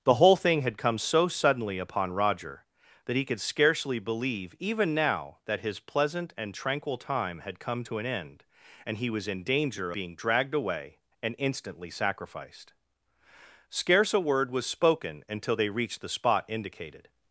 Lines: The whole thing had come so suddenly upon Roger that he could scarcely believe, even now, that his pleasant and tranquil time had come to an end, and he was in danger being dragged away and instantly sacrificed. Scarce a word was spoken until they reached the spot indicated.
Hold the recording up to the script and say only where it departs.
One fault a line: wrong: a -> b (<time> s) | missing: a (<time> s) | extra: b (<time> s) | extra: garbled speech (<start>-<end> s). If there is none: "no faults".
no faults